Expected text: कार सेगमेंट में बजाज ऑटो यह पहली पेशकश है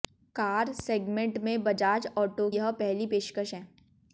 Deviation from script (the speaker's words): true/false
false